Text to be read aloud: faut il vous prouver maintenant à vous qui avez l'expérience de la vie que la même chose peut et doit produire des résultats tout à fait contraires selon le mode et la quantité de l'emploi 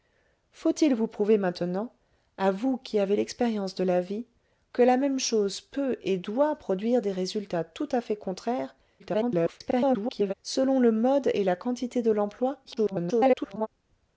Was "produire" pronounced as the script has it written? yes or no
yes